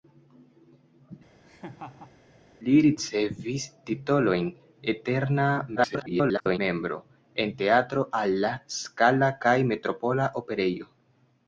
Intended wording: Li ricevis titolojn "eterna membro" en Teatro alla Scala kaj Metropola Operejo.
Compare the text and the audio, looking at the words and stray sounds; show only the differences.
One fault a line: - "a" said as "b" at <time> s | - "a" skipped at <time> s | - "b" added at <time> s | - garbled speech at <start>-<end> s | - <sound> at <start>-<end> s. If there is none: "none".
- laugh at 1.4-2.2 s
- garbled speech at 5.8-6.6 s